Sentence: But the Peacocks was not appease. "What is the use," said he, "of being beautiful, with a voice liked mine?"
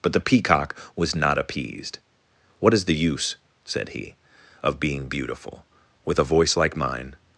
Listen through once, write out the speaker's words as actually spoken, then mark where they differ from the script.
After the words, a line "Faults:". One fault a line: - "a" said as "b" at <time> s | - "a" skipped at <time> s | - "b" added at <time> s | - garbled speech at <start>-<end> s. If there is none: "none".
But the Peacock was not appeased. "What is the use," said he, "of being beautiful, with a voice like mine?"
Faults:
- "Peacocks" said as "Peacock" at 0.2 s
- "appease" said as "appeased" at 1.4 s
- "liked" said as "like" at 6.6 s